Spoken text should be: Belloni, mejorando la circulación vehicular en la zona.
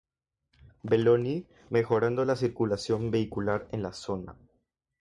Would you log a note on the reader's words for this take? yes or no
no